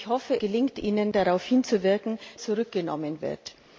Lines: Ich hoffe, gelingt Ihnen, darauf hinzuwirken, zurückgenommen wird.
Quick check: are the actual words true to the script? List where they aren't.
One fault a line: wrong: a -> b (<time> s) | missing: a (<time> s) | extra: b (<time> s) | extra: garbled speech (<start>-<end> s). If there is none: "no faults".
no faults